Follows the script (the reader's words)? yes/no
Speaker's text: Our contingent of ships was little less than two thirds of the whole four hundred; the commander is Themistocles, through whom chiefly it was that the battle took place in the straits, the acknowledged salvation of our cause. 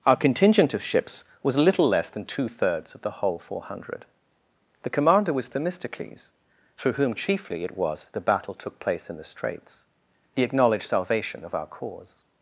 no